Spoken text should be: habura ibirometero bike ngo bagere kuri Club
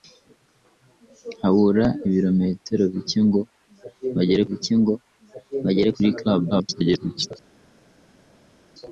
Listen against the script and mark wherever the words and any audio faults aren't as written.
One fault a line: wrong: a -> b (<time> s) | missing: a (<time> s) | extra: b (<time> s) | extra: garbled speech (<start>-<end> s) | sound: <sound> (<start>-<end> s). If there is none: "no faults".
extra: bike ngo bagere (4.5 s)
extra: garbled speech (6.5-7.3 s)